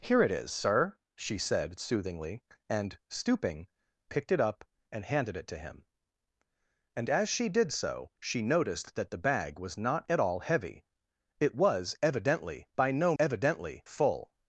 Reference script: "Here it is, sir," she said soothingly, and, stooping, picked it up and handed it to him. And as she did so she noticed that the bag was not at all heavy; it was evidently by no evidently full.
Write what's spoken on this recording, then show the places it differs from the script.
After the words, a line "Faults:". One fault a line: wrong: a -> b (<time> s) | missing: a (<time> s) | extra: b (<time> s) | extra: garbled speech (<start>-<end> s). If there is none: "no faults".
"Here it is, sir," she said soothingly, and, stooping, picked it up and handed it to him. And as she did so she noticed that the bag was not at all heavy; it was evidently by no evidently full.
Faults:
no faults